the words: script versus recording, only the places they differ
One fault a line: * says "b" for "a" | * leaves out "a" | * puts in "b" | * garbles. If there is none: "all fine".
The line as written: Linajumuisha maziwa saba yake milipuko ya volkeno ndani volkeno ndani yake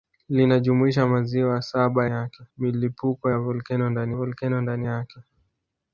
all fine